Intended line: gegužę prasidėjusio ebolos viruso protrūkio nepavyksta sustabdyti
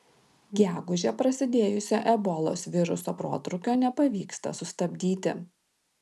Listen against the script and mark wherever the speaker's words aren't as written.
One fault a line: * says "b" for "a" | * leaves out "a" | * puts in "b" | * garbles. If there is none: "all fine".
all fine